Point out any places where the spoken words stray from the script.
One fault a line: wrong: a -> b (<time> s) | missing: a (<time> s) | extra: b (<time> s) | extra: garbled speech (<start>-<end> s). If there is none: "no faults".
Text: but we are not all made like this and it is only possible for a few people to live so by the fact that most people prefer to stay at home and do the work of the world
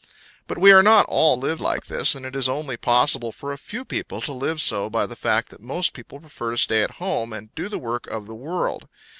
wrong: made -> live (1.3 s)